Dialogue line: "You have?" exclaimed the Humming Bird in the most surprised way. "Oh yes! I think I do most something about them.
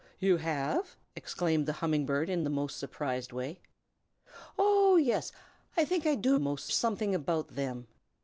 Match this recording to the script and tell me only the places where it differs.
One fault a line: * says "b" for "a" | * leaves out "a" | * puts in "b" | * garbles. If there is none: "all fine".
all fine